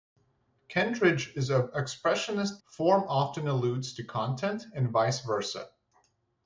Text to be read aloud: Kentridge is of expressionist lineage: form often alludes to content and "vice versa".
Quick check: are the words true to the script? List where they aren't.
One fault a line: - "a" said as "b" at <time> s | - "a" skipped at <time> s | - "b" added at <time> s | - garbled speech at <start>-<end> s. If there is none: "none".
- "lineage" skipped at 2.6 s